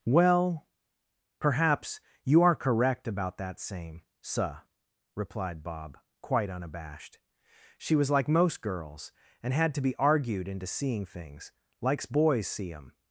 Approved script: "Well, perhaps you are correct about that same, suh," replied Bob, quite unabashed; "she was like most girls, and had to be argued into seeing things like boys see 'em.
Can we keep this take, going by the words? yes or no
no